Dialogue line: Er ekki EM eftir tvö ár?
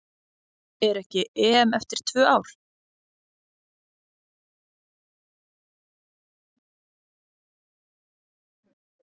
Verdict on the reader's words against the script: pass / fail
pass